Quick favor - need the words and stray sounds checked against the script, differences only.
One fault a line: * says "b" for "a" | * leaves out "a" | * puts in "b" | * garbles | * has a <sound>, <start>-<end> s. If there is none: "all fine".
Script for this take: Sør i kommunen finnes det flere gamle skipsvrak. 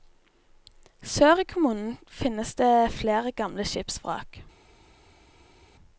all fine